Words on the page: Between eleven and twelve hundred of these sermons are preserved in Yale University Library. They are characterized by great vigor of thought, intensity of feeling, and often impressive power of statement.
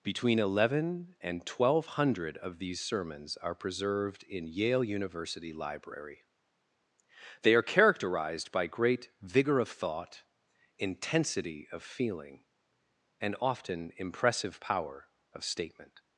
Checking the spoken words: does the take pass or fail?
pass